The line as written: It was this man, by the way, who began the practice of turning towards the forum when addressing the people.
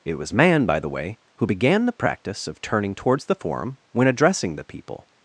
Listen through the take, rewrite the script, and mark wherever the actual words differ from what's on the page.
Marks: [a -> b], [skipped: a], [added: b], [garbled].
It was [skipped: this] man, by the way, who began the practice of turning towards the forum when addressing the people.